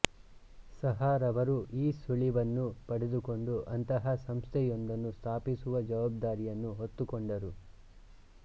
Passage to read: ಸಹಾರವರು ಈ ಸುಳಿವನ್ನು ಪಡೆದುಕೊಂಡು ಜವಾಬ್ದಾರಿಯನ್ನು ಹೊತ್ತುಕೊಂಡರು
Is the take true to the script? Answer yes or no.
no